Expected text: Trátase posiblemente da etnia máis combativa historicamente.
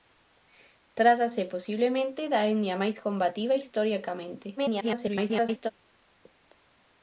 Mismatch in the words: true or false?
true